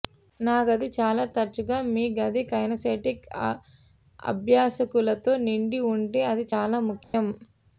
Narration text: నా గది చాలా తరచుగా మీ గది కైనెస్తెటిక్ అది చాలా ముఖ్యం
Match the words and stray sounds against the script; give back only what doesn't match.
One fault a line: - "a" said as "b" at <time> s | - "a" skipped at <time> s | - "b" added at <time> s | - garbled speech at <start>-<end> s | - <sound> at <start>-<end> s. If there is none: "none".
- "అభ్యాసకులతో నిండి ఉంటే" added at 4.2 s
- dropout at 7.0-7.1 s